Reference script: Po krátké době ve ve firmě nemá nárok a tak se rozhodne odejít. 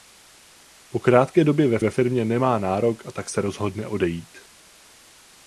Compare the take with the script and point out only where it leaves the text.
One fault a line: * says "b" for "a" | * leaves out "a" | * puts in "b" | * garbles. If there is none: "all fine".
all fine